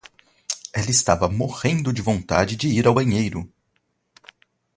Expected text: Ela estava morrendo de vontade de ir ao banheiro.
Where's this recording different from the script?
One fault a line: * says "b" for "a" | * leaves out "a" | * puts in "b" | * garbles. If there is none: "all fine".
all fine